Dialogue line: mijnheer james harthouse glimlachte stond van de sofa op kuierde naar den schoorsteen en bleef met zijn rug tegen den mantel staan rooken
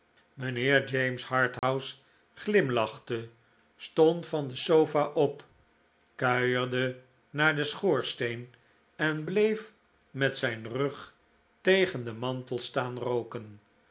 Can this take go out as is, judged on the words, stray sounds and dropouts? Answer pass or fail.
fail